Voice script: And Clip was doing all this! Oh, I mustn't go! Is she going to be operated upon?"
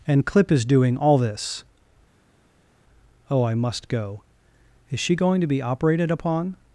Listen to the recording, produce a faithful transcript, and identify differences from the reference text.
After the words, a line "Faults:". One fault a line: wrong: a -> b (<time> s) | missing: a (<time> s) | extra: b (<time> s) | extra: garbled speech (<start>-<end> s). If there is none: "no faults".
And Clip is doing all this! Oh, I must go! Is she going to be operated upon?"
Faults:
wrong: was -> is (0.5 s)
wrong: mustn't -> must (3.5 s)